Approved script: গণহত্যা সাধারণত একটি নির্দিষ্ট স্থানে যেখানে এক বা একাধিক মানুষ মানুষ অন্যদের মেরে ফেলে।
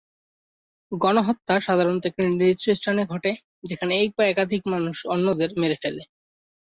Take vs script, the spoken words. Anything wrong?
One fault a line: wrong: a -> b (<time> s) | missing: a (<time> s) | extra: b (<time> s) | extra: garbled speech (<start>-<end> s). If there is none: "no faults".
extra: ঘটে (3.0 s)
missing: মানুষ (5.0 s)